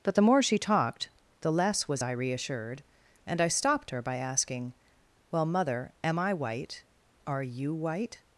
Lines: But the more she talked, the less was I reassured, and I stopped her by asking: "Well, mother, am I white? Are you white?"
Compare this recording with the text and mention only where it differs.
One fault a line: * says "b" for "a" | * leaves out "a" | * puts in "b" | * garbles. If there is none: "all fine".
all fine